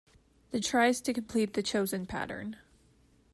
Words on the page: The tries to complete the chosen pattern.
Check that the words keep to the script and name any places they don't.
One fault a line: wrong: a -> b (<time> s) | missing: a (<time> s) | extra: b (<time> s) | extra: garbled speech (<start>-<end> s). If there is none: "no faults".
no faults